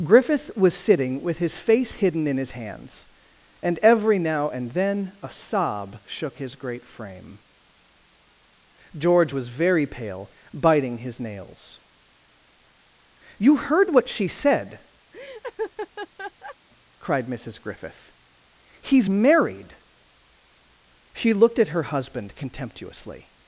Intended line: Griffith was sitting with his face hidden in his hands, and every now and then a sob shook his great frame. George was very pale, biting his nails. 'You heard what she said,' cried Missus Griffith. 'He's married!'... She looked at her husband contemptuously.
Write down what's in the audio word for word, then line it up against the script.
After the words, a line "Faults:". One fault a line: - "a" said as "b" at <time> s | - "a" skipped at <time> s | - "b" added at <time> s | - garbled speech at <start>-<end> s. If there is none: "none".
Griffith was sitting with his face hidden in his hands, and every now and then a sob shook his great frame. George was very pale, biting his nails. 'You heard what she said,' cried Missus Griffith. 'He's married!'... She looked at her husband contemptuously.
Faults:
none